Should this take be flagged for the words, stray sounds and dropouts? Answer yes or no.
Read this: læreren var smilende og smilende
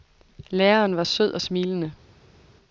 yes